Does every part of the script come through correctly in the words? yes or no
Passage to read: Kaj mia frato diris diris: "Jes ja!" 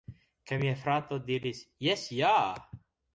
no